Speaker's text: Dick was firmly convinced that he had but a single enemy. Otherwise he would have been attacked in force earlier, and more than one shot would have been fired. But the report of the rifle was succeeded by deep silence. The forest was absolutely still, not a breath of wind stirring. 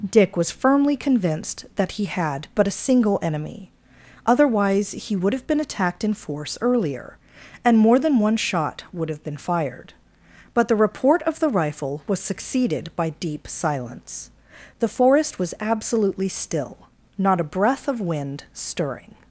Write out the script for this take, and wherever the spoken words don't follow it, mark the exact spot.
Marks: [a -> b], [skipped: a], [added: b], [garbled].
Dick was firmly convinced that he had but a single enemy. Otherwise he would have been attacked in force earlier, and more than one shot would have been fired. But the report of the rifle was succeeded by deep silence. The forest was absolutely still, not a breath of wind stirring.